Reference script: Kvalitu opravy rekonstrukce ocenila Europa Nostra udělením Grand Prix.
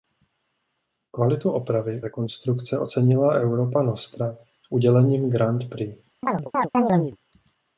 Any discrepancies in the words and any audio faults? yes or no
yes